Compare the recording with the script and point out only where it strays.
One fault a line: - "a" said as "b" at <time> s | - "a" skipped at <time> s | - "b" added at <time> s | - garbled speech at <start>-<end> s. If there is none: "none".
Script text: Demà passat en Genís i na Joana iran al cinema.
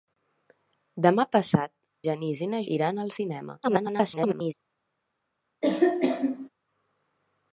- "en" skipped at 1.7 s
- "Joana" skipped at 2.6 s
- garbled speech at 3.6-4.5 s